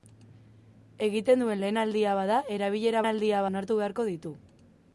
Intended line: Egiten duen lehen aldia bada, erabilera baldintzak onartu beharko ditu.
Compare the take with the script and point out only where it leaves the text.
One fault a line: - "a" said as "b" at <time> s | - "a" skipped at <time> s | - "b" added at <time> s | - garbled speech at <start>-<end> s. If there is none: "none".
- "baldintzak" said as "aldia" at 3.1 s